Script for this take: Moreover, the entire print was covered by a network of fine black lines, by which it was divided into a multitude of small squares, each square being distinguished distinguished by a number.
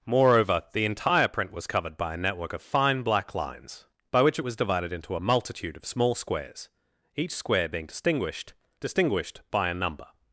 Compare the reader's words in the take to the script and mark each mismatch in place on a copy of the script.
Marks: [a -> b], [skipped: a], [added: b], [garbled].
Moreover, the entire print was covered by a network of fine black lines, by which it was divided into a multitude of small squares, each square being distinguished distinguished by a number.